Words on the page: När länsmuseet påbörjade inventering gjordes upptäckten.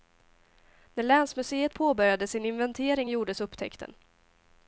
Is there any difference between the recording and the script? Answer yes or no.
yes